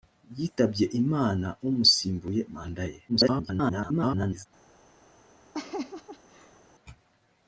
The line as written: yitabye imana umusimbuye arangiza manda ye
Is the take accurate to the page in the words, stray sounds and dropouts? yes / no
no